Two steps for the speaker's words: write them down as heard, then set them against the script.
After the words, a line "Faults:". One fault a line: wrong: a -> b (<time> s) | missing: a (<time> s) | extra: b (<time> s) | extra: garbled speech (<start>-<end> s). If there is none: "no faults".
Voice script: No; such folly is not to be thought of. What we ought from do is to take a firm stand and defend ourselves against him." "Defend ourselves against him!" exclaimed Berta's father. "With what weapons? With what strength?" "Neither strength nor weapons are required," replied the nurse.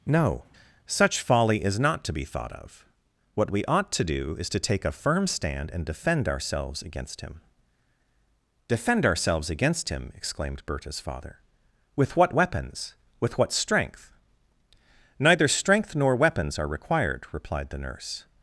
No; such folly is not to be thought of. What we ought to do is to take a firm stand and defend ourselves against him." "Defend ourselves against him!" exclaimed Berta's father. "With what weapons? With what strength?" "Neither strength nor weapons are required," replied the nurse.
Faults:
wrong: from -> to (3.9 s)